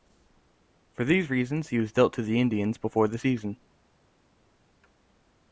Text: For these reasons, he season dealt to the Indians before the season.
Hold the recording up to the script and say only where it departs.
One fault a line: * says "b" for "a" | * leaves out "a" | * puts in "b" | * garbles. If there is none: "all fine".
* says "was" for "season"